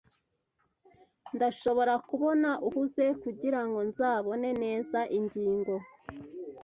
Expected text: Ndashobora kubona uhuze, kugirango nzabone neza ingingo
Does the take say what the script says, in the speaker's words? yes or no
yes